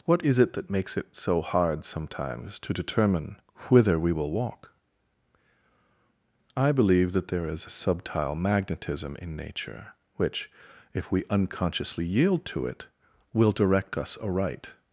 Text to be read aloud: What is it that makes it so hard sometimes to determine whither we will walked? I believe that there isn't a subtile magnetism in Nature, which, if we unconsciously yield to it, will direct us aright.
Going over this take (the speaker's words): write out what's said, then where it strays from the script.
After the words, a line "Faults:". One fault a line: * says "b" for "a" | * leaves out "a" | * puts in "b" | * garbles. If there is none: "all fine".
What is it that makes it so hard sometimes to determine whither we will walk? I believe that there is a subtile magnetism in Nature, which, if we unconsciously yield to it, will direct us aright.
Faults:
* says "walk" for "walked"
* says "is" for "isn't"